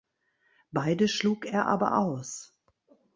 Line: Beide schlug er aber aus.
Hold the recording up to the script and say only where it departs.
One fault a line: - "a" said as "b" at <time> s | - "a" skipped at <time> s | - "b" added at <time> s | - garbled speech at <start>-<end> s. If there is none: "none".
none